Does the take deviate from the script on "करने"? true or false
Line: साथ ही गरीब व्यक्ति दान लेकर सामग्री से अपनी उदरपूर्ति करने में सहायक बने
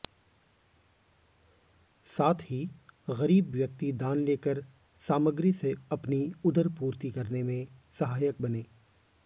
false